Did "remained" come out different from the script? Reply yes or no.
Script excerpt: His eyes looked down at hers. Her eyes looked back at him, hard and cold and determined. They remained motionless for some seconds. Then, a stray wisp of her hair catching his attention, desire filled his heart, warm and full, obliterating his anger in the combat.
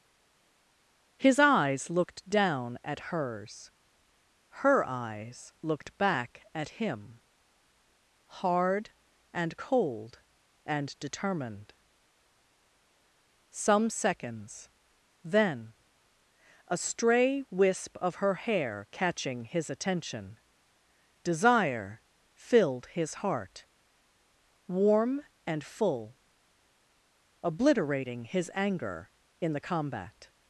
yes